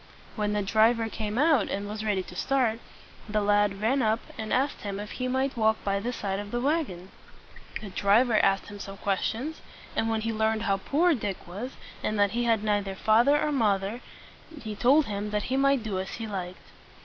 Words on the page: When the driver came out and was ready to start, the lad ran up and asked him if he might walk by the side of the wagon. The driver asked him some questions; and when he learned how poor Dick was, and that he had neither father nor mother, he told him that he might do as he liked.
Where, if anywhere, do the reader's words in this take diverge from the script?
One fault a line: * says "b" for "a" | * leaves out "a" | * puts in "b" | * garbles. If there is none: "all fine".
all fine